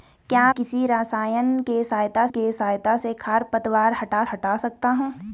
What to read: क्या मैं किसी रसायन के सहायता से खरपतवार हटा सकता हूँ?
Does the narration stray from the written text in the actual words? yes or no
yes